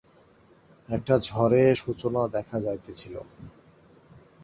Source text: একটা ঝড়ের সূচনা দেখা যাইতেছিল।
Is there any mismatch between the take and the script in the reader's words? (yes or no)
no